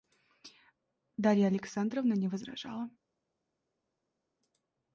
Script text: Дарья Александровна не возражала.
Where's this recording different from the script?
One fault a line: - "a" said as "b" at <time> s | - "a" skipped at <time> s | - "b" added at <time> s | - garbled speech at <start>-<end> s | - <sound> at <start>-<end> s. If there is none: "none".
none